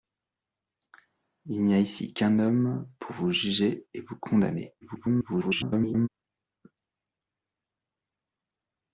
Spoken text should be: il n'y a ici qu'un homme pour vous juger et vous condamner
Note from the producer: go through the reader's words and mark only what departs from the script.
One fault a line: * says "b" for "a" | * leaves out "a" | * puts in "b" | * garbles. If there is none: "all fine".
* garbles